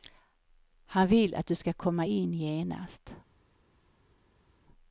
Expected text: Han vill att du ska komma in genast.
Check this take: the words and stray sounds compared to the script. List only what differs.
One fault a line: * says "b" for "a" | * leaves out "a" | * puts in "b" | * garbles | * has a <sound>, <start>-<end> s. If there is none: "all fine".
all fine